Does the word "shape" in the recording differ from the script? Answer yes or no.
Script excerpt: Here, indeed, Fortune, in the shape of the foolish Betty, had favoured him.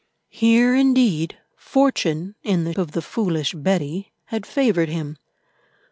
yes